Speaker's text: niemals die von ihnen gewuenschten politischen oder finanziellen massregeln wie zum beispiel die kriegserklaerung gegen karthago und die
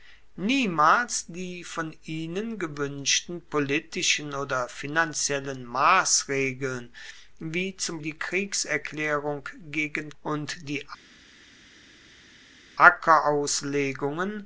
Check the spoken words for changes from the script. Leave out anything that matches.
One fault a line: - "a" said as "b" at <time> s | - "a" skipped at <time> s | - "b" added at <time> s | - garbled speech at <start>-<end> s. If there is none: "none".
- "beispiel" skipped at 8.0 s
- "karthago" skipped at 10.1 s